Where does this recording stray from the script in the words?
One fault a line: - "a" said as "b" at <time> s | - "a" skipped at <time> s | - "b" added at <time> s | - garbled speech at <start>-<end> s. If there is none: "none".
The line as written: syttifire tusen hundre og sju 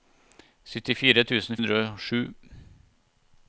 none